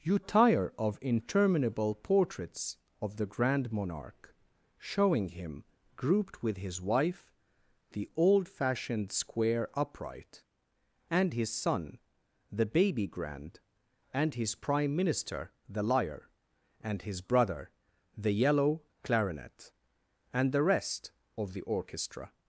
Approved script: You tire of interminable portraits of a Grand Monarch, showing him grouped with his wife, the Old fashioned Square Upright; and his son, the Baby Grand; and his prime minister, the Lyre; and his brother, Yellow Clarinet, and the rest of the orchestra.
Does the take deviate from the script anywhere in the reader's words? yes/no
yes